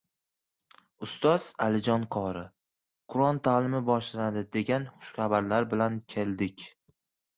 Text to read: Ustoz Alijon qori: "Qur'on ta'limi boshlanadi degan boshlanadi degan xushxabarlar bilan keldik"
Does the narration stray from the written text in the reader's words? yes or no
yes